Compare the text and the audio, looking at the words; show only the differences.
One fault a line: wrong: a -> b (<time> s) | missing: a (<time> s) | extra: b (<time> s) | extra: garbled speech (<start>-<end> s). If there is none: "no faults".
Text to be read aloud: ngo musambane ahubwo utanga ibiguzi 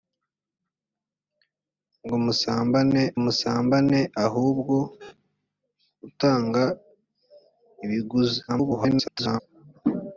extra: musambane (3.2 s)
extra: garbled speech (8.5-9.4 s)